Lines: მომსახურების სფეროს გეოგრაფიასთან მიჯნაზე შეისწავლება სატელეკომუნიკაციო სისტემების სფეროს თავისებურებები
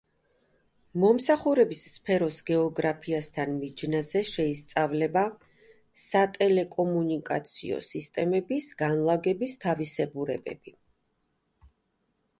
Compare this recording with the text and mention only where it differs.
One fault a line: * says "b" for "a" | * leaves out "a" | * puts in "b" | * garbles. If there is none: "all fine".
* says "განლაგების" for "სფეროს"